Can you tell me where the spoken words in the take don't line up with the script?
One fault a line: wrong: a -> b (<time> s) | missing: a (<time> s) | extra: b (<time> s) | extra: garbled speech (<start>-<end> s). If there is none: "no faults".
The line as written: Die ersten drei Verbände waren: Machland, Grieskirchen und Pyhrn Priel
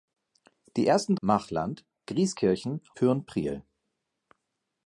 missing: drei Verbände waren (1.1 s)
missing: und (2.8 s)